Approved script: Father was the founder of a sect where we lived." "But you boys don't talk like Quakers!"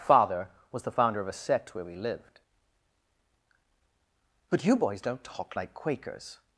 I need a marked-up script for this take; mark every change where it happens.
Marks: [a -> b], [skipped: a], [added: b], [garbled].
Father was the founder of a sect where we lived." "But you boys don't talk like Quakers!"